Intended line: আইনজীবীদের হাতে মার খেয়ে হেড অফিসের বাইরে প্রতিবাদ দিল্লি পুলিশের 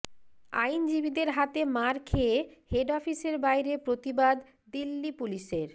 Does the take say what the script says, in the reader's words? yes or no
yes